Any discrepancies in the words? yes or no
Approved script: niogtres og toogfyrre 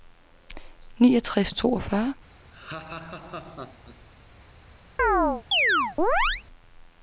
no